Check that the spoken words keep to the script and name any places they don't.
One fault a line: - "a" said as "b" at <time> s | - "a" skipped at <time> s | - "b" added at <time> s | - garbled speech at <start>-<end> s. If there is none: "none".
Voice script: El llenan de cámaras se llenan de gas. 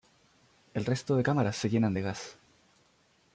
- "llenan" said as "resto" at 0.8 s